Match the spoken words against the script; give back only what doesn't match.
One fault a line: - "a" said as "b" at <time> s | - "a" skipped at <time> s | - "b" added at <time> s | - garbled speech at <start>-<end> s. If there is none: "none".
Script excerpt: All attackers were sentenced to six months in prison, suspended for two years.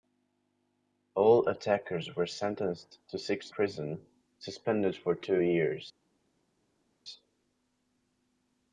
- "months in" skipped at 3.5 s